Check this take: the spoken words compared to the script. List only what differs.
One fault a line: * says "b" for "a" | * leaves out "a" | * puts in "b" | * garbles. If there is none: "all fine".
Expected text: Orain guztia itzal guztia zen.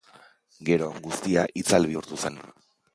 * says "Gero" for "Orain"
* says "bihurtu" for "guztia"